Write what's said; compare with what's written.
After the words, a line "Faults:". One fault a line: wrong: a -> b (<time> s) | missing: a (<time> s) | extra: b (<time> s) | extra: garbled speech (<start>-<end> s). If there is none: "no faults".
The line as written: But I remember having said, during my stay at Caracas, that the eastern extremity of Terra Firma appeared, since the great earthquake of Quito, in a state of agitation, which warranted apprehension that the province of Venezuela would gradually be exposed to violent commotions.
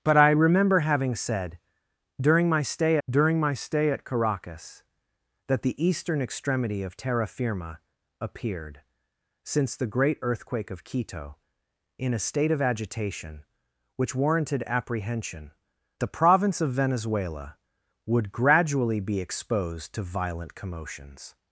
But I remember having said, during my stay during my stay at Caracas, that the eastern extremity of Terra Firma appeared, since the great earthquake of Quito, in a state of agitation, which warranted apprehension the province of Venezuela would gradually be exposed to violent commotions.
Faults:
extra: during my stay (3.1 s)
missing: that (15.5 s)